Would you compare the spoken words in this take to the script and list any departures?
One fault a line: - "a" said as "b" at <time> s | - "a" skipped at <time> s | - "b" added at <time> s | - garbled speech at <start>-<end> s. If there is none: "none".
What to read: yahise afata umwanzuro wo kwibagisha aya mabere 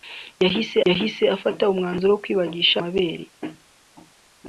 - "yahise" added at 0.9 s
- "aya" skipped at 2.8 s